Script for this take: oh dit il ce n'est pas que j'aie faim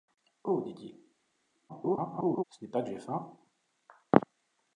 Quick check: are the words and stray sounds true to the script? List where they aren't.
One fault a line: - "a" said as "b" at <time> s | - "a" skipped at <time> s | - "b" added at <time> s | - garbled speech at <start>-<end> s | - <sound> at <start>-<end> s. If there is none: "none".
- garbled speech at 1.7-2.4 s